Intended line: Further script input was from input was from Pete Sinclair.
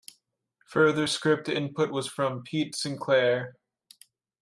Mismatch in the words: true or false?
true